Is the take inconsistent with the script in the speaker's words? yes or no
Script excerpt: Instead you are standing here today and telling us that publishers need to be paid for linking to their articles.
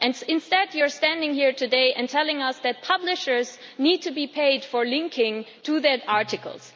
no